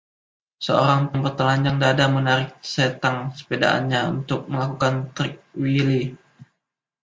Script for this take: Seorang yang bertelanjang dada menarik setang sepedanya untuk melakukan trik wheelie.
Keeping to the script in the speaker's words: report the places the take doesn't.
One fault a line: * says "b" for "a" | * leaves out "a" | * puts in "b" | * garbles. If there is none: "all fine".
all fine